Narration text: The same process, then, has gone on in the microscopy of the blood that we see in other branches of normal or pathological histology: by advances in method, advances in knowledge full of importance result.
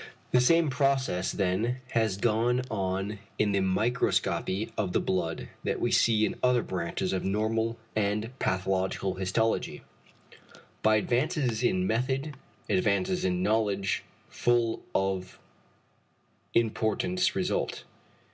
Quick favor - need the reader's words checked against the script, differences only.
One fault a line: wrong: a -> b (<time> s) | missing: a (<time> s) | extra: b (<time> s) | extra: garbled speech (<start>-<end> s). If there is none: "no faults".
wrong: or -> and (7.9 s)